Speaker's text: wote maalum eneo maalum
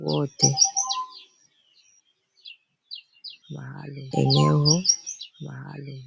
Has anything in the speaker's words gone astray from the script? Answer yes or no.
no